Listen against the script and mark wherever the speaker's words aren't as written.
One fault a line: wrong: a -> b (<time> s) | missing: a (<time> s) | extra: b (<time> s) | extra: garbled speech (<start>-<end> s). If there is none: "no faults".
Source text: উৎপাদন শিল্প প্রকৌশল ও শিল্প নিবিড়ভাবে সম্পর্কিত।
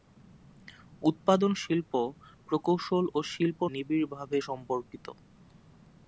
no faults